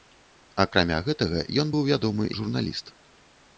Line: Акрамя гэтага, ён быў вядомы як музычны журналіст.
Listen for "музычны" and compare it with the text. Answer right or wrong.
wrong